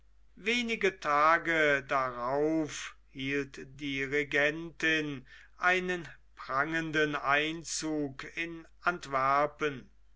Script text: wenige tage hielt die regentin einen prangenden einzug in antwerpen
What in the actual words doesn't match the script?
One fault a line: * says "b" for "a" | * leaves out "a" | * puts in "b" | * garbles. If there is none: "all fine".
* puts in "darauf"